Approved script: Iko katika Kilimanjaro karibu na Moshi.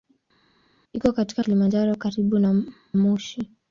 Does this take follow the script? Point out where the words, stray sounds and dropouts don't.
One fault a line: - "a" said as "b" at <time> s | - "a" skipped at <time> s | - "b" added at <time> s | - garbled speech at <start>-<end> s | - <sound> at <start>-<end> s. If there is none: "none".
none